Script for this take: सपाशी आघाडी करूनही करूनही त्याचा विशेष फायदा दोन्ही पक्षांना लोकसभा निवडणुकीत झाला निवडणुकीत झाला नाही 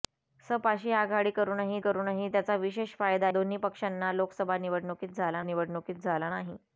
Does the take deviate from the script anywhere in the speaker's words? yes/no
no